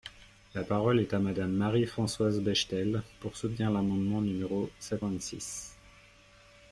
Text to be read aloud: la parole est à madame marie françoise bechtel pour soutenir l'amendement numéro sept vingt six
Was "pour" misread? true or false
false